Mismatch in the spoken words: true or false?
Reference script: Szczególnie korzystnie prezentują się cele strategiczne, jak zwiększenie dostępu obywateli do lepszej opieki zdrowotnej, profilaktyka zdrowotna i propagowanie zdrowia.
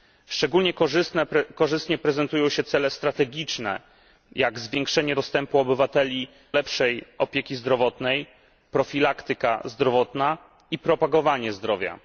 true